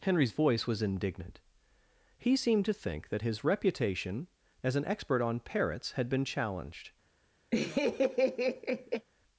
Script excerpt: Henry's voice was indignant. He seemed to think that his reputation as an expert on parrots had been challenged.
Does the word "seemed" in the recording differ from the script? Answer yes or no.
no